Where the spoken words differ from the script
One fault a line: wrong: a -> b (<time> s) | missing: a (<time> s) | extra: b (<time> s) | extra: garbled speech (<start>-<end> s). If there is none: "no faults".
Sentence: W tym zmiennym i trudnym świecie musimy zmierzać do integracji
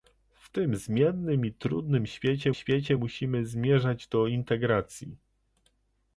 extra: świecie (2.5 s)